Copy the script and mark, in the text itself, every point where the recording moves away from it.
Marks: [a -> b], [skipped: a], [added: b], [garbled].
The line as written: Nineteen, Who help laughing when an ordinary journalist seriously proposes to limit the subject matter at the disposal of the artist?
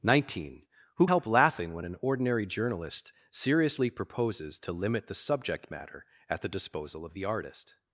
Nineteen, Who help laughing when an ordinary journalist seriously proposes to limit the subject matter at the disposal of the artist?